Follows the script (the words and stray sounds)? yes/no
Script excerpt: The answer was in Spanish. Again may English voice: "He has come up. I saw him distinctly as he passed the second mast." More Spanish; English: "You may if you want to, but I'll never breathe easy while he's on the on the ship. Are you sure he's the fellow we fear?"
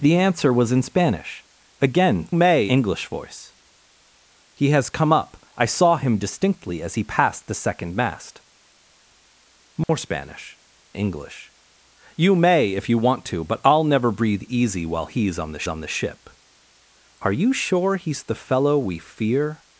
no